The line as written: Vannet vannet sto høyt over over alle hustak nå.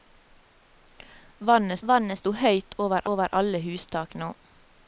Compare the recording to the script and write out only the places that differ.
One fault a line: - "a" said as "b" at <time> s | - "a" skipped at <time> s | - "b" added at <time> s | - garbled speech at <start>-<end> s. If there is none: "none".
none